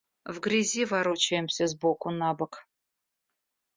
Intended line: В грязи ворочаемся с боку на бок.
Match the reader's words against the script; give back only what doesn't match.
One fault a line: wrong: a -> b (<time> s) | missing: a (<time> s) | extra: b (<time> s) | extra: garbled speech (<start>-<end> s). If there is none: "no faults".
no faults